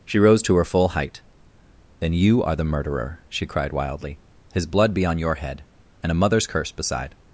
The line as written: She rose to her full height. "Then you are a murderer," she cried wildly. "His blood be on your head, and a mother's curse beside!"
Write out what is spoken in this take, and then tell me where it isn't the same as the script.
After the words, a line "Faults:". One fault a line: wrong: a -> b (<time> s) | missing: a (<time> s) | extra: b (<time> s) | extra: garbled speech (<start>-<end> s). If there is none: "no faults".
She rose to her full height. "Then you are the murderer," she cried wildly. "His blood be on your head, and a mother's curse beside!"
Faults:
wrong: a -> the (2.5 s)